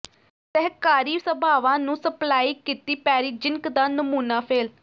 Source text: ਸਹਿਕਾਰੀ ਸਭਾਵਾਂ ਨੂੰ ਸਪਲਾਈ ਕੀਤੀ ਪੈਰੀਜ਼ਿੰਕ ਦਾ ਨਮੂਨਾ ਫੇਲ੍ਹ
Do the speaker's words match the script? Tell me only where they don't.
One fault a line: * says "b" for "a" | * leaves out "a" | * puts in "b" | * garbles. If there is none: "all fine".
all fine